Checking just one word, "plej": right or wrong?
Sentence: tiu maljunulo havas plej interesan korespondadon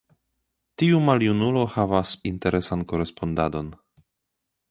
wrong